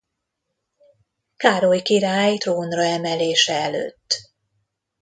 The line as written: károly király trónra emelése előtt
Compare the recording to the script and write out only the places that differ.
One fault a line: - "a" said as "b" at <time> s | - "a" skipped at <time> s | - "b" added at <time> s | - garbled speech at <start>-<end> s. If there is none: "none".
none